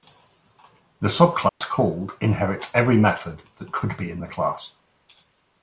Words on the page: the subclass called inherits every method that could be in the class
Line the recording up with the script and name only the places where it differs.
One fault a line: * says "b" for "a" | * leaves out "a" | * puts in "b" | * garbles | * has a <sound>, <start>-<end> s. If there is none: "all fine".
* has a dropout, 1.5-1.6 s